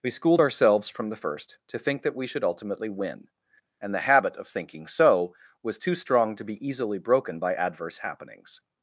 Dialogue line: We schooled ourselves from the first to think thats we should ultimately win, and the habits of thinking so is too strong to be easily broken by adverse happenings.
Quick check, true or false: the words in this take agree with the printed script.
false